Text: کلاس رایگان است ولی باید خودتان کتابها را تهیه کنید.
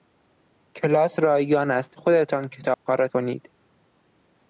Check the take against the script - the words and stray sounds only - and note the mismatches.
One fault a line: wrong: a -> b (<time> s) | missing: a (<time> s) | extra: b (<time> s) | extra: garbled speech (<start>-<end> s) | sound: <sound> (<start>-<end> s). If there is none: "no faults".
missing: ولی باید (2.0 s)
sound: dropout (2.7-2.9 s)
missing: تهیه (3.1 s)